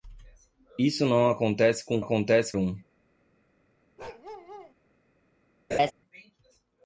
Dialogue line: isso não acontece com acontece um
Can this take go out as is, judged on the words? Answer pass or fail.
pass